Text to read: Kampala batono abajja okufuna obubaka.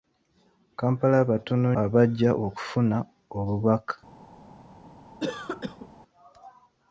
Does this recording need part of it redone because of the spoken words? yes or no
no